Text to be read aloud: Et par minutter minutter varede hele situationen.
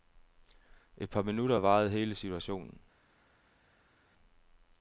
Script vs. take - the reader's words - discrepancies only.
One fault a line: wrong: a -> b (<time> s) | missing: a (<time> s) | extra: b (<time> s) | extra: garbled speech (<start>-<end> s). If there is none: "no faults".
missing: minutter (1.6 s)